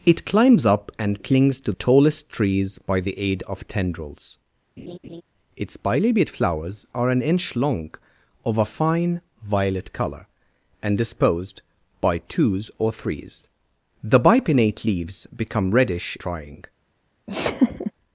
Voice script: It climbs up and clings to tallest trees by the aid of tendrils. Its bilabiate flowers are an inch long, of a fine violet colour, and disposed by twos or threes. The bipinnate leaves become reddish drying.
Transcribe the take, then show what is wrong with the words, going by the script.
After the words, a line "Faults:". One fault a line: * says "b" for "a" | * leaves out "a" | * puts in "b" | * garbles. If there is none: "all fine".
It climbs up and clings to tallest trees by the aid of tendrils. Its bilabiate flowers are an inch long, of a fine violet colour, and disposed by twos or threes. The bipinnate leaves become reddish drying.
Faults:
all fine